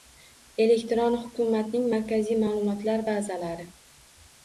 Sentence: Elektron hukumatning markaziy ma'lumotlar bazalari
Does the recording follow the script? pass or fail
pass